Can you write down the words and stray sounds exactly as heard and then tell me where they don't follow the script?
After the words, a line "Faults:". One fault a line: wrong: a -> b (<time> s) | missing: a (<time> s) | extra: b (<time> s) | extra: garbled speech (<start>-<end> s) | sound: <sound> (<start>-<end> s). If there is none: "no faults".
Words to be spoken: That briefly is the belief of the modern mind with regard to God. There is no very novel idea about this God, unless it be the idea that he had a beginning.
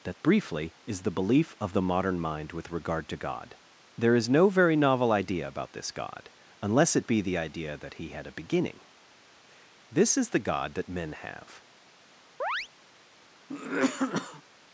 That briefly is the belief of the modern mind with regard to God. There is no very novel idea about this God, unless it be the idea that he had a beginning. This is the God that men have
Faults:
extra: This is the God that men have (9.9 s)
sound: chirp (12.4-12.7 s)
sound: cough (13.5-14.4 s)